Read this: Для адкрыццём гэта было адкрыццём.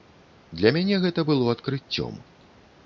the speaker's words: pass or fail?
fail